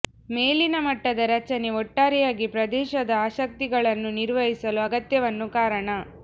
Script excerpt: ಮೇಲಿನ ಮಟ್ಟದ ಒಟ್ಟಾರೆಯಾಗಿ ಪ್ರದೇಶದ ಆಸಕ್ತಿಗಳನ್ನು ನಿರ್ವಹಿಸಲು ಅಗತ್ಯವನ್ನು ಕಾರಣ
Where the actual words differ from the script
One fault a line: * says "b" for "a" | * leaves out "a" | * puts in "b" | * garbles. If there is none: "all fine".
* puts in "ರಚನೆ"